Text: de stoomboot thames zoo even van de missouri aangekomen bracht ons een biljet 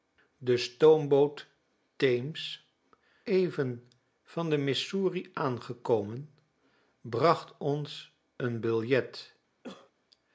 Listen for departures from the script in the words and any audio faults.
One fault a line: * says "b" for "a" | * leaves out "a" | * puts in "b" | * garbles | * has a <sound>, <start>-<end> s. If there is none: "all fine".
* leaves out "zoo"
* has a cough, 9.6-9.9 s